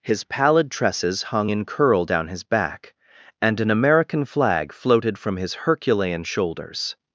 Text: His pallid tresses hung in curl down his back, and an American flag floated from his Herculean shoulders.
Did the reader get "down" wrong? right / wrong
right